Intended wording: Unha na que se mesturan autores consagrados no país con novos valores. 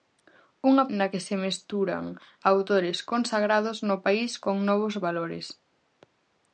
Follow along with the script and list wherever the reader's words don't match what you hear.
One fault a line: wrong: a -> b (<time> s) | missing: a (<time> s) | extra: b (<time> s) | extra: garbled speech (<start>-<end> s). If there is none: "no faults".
no faults